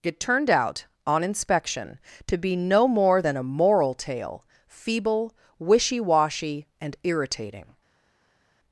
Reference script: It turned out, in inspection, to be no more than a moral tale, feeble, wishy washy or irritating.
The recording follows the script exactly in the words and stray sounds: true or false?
false